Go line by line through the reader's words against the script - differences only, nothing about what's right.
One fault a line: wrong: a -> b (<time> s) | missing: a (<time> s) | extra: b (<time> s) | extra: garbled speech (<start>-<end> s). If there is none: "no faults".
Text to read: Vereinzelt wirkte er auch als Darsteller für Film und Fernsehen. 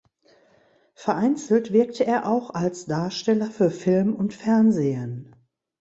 no faults